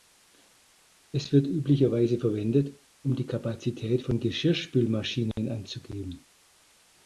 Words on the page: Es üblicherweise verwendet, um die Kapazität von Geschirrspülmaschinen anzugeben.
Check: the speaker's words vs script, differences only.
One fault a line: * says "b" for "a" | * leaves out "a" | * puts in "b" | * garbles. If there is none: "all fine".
* puts in "wird"